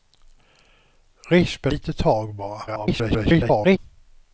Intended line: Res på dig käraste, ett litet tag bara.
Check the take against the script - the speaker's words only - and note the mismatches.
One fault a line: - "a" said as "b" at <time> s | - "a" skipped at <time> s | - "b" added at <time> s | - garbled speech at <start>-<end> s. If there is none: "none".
- "dig käraste ett" skipped at 1.7 s
- garbled speech at 2.7-3.8 s